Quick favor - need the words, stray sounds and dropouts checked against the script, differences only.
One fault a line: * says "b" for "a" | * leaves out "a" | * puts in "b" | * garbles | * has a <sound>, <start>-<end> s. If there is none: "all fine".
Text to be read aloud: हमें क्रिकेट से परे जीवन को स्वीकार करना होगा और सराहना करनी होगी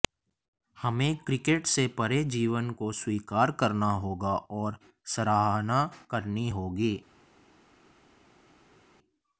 all fine